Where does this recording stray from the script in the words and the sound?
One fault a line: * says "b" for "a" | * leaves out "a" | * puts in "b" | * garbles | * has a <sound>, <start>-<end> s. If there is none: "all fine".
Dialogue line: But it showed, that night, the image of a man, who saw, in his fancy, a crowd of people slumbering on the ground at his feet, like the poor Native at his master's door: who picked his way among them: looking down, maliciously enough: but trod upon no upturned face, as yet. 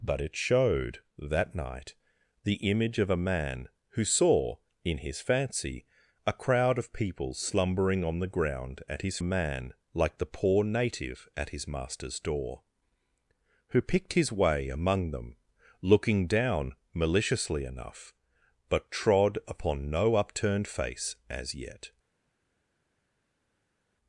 * says "man" for "feet"